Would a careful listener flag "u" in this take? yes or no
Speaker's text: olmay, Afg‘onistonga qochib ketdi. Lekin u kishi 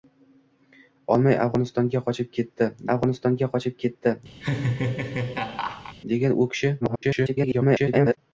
no